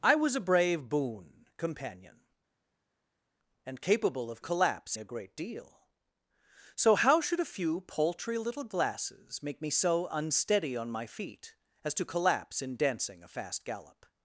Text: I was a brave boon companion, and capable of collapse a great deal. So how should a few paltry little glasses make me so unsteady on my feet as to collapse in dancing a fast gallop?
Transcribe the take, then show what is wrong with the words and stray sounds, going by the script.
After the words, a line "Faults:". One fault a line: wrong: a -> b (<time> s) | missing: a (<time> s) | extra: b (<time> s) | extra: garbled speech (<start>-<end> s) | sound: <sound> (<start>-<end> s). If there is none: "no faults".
I was a brave boon companion, and capable of collapse a great deal. So how should a few paltry little glasses make me so unsteady on my feet as to collapse in dancing a fast gallop?
Faults:
no faults